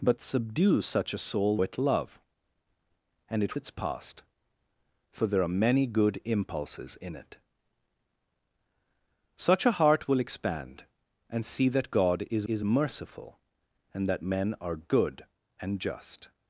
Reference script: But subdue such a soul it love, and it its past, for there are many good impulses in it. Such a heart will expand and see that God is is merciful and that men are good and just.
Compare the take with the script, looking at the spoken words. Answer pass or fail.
pass